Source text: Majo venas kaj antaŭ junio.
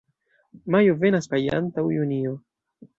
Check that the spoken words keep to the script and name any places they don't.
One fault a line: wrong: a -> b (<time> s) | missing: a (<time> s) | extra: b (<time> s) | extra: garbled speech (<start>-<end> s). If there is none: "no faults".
no faults